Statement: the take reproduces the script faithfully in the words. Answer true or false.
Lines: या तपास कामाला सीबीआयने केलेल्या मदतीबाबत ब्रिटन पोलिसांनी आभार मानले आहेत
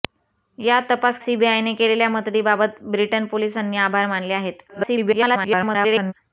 false